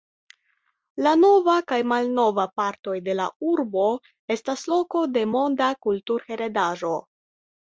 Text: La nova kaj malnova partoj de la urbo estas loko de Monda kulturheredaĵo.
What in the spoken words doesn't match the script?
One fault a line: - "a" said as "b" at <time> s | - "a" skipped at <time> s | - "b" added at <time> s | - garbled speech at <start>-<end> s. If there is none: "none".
none